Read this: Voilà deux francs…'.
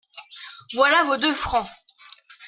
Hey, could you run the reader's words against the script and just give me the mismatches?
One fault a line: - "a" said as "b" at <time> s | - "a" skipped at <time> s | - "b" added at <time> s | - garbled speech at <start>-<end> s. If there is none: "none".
- "vos" added at 1.0 s